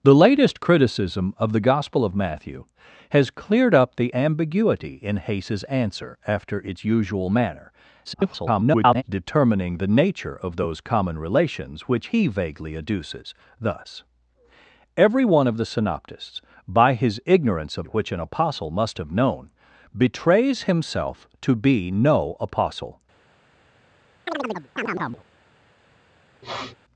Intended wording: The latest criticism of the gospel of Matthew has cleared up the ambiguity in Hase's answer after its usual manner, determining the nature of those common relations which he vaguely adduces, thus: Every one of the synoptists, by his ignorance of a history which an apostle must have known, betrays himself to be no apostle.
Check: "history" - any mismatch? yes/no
yes